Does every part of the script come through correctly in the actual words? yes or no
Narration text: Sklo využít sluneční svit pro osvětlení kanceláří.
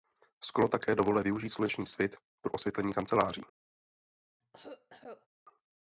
no